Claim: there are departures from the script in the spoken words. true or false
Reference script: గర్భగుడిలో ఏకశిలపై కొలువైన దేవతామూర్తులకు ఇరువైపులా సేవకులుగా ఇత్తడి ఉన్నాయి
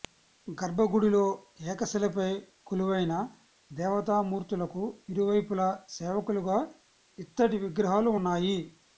true